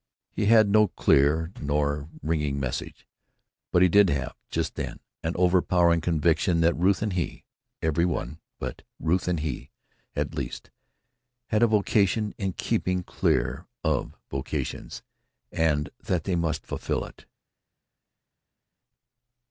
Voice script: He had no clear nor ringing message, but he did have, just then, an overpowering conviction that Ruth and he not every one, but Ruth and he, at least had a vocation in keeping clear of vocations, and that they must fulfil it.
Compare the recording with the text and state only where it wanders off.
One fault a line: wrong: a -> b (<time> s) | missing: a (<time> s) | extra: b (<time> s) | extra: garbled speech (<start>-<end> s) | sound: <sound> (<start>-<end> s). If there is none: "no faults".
missing: not (7.5 s)